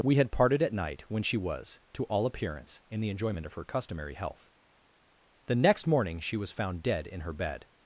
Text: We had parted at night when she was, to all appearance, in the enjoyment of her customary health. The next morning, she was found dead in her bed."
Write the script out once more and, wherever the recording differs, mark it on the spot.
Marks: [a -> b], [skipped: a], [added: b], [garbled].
We had parted at night when she was, to all appearance, in the enjoyment of her customary health. The next morning, she was found dead in her bed."